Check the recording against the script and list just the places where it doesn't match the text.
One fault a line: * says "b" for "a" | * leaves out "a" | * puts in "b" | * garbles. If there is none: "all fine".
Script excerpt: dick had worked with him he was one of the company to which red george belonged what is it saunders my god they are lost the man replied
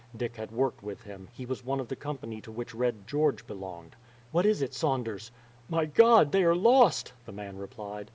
all fine